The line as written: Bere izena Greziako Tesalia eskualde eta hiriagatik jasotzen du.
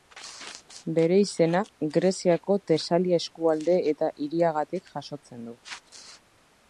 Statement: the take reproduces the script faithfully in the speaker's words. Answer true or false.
true